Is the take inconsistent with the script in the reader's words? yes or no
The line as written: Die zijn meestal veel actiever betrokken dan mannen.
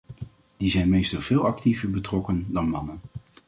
no